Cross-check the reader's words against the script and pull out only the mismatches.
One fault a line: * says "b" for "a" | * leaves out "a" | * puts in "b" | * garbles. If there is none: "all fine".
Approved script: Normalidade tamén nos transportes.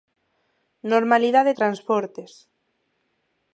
* leaves out "tamén nos"